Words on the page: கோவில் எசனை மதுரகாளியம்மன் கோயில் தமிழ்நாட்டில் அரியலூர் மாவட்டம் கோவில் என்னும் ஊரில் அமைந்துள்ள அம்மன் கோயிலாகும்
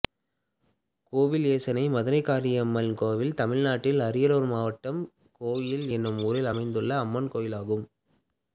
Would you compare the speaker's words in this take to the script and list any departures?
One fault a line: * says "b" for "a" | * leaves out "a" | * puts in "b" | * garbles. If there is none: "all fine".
all fine